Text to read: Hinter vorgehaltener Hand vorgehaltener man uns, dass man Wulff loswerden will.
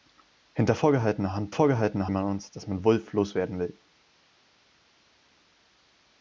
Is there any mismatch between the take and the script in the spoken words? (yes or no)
no